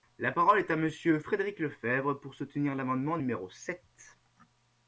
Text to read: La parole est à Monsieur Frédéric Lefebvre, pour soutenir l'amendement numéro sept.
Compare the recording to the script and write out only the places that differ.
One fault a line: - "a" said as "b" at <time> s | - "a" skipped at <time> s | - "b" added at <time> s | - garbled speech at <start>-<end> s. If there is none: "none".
none